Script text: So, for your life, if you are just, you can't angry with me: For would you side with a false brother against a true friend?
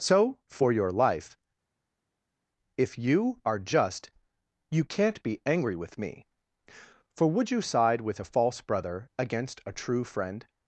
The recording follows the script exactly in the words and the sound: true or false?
false